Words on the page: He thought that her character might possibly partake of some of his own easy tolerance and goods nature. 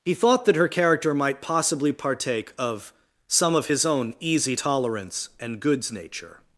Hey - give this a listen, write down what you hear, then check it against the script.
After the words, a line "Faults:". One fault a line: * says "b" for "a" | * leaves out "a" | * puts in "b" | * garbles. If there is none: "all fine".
He thought that her character might possibly partake of some of his own easy tolerance and goods nature.
Faults:
all fine